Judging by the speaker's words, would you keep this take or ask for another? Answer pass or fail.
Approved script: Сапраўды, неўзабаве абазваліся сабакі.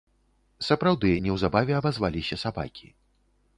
pass